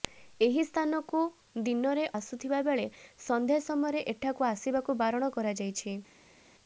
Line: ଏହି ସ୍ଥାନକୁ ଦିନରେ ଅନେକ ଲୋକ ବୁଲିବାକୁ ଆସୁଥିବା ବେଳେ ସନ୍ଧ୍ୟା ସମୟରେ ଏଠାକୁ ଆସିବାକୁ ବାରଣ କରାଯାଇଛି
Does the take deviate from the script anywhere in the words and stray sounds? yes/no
yes